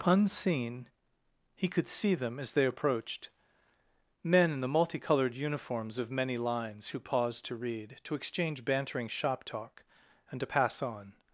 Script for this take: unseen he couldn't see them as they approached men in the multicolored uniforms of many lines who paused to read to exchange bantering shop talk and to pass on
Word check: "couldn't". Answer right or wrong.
wrong